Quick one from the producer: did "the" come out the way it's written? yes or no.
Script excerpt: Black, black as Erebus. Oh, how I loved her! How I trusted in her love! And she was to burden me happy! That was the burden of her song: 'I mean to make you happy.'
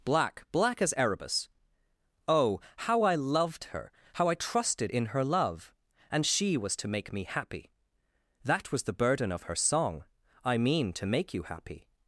yes